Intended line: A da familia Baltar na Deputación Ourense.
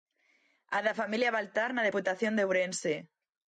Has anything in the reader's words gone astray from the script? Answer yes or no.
yes